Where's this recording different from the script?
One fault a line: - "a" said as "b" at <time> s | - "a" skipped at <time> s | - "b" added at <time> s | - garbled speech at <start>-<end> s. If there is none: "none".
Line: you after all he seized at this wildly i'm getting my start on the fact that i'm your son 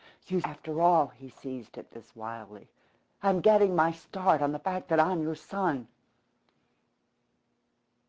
none